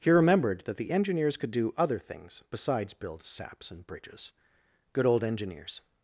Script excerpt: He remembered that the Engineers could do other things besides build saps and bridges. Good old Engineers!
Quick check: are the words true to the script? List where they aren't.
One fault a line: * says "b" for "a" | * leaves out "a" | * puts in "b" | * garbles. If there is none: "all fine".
all fine